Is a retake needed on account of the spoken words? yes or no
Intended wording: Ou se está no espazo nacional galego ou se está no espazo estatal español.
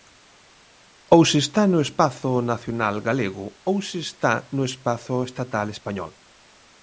no